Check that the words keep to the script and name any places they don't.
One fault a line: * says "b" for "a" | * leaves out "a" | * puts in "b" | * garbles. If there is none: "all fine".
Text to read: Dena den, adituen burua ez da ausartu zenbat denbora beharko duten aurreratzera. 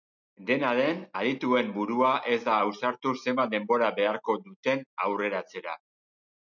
all fine